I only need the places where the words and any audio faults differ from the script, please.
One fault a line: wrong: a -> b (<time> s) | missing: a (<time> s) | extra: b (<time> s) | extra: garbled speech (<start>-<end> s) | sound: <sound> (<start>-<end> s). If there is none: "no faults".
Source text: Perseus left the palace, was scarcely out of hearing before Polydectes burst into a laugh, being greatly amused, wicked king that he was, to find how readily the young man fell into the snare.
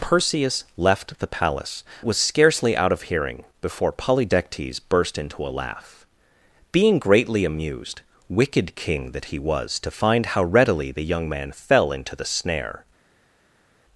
no faults